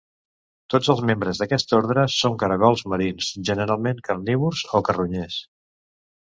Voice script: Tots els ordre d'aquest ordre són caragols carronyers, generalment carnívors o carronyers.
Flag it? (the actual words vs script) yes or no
yes